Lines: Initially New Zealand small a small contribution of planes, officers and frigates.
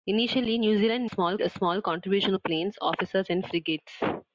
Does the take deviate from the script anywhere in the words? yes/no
no